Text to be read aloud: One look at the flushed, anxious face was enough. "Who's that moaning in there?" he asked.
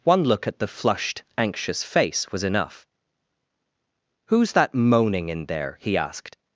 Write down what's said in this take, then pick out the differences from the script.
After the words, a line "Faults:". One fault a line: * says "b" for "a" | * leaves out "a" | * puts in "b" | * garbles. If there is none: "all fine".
One look at the flushed, anxious face was enough. "Who's that moaning in there?" he asked.
Faults:
all fine